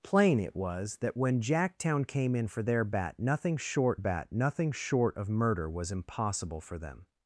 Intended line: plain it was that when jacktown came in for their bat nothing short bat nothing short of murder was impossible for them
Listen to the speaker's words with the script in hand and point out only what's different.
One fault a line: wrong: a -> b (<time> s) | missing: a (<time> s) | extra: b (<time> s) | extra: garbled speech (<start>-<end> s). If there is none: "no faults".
no faults